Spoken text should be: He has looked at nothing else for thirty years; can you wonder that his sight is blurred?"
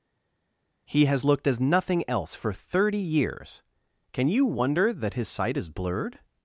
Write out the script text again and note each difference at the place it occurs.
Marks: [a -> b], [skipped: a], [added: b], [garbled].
He has looked [at -> as] nothing else for thirty years; can you wonder that his sight is blurred?"